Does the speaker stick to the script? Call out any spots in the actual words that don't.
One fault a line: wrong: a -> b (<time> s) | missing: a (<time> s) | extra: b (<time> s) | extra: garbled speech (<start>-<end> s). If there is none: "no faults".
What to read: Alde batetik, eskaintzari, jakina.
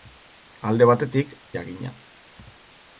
missing: eskaintzari (1.4 s)